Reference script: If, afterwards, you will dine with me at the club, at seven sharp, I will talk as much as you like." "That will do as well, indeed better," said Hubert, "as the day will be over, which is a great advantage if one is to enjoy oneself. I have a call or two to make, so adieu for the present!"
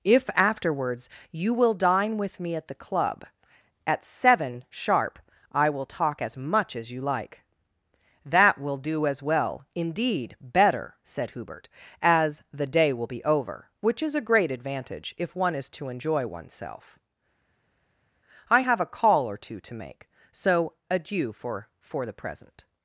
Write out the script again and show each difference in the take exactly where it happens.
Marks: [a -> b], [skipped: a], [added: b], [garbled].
If, afterwards, you will dine with me at the club, at seven sharp, I will talk as much as you like." "That will do as well, indeed better," said Hubert, "as the day will be over, which is a great advantage if one is to enjoy oneself. I have a call or two to make, so adieu for [added: for] the present!"